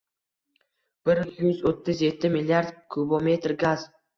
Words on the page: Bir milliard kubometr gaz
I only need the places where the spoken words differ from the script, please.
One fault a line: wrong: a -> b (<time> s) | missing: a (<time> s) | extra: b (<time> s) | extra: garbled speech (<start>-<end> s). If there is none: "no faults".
extra: yuz o'ttiz yetti (1.4 s)